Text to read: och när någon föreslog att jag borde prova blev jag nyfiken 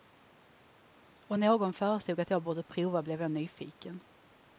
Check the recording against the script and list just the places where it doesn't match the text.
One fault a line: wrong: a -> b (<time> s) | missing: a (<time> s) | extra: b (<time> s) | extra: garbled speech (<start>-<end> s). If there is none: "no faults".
missing: när (1.4 s)